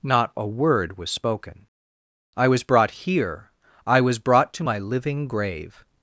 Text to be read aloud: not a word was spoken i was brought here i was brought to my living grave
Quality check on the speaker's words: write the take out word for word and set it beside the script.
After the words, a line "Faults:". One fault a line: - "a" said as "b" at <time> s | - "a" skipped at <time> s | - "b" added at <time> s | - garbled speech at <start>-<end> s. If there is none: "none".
not a word was spoken i was brought here i was brought to my living grave
Faults:
none